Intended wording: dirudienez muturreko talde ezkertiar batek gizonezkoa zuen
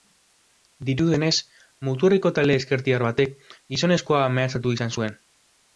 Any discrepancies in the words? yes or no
yes